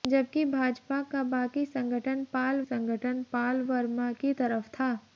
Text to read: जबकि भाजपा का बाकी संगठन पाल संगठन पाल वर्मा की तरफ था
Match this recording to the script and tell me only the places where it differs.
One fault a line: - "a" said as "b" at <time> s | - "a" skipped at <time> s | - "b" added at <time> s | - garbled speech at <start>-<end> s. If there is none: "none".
none